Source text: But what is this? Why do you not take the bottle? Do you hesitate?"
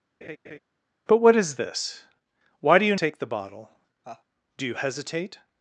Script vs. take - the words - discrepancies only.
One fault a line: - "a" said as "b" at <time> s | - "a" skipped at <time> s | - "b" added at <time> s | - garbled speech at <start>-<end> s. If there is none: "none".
- "not" skipped at 2.9 s